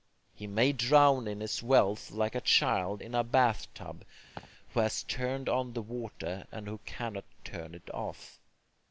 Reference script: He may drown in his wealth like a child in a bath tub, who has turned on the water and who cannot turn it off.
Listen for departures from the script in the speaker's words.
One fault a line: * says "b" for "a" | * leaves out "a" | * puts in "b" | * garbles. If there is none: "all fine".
all fine